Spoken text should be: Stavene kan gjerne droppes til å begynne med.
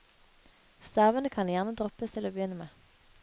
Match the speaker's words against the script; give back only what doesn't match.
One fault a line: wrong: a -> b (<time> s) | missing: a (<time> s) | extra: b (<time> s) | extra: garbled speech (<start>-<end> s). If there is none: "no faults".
no faults